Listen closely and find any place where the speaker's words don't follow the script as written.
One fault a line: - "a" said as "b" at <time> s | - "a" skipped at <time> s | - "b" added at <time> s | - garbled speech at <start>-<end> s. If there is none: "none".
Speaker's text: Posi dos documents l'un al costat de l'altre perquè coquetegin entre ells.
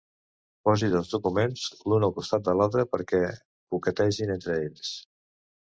none